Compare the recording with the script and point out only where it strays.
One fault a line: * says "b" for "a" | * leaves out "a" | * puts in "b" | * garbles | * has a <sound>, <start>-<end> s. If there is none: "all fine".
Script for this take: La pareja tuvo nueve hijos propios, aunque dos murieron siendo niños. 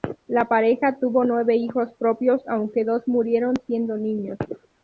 all fine